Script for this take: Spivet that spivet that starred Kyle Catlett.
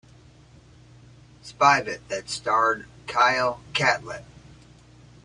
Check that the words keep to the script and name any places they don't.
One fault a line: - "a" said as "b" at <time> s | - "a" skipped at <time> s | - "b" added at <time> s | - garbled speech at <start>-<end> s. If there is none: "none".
- "spivet that" skipped at 2.3 s